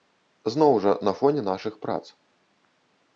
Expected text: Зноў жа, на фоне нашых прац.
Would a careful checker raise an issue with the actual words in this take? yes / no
no